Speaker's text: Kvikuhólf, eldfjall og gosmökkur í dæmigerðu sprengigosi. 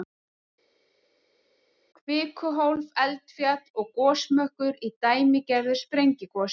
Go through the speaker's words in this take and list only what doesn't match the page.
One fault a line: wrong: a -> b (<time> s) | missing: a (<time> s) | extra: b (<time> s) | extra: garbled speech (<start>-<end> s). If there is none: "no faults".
no faults